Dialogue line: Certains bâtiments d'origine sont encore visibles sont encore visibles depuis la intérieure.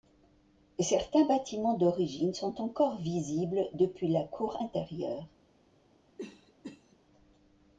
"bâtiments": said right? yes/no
yes